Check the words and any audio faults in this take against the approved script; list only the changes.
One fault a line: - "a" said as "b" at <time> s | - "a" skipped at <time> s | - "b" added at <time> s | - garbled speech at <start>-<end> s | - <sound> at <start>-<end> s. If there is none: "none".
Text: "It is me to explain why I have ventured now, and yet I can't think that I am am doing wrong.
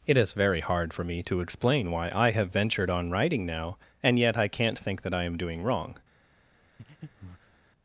- "very hard for" added at 0.3 s
- "on writing" added at 2.9 s
- "am" skipped at 5.4 s
- breath at 6.8-7.6 s